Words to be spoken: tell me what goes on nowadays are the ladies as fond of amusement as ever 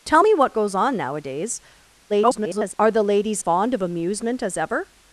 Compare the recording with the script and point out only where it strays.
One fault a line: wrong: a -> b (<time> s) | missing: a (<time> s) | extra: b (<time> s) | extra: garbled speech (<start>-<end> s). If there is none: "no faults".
extra: garbled speech (2.1-2.7 s)
missing: as (3.4 s)